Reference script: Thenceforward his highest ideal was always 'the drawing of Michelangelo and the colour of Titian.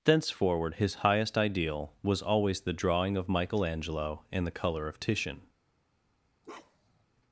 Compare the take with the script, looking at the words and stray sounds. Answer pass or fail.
fail